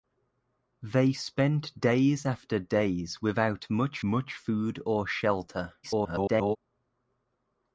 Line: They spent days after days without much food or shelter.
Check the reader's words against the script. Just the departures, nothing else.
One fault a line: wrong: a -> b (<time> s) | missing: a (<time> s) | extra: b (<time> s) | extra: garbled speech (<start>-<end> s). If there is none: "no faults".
extra: much (4.0 s)
extra: garbled speech (5.8-6.6 s)